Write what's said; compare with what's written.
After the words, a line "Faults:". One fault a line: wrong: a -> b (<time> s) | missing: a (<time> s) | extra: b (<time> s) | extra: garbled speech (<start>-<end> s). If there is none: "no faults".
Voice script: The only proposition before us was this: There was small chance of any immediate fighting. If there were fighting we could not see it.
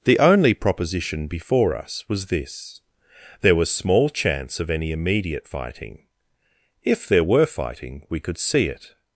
The only proposition before us was this: There was small chance of any immediate fighting. If there were fighting we could see it.
Faults:
missing: not (8.4 s)